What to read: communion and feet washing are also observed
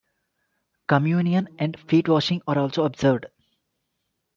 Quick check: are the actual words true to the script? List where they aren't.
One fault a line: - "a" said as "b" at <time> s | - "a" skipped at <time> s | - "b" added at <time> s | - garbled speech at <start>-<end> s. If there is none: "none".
none